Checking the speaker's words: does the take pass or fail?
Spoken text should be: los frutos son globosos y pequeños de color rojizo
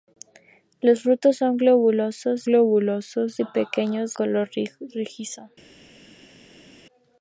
fail